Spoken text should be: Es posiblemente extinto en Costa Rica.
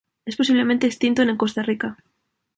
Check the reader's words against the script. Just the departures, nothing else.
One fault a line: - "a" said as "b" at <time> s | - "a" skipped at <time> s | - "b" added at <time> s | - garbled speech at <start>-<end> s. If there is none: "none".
none